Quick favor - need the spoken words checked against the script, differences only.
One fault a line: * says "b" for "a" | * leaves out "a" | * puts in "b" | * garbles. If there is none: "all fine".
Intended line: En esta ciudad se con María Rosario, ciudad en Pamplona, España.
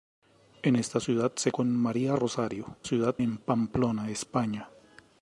all fine